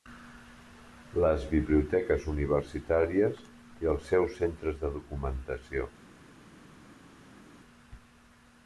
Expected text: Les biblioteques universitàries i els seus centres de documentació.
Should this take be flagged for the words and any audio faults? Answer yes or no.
no